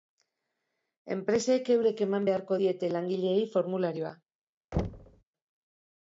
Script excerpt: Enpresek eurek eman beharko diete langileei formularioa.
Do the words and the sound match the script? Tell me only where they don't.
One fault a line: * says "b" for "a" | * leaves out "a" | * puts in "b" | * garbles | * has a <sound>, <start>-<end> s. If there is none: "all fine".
* has a thud, 4.7-5.2 s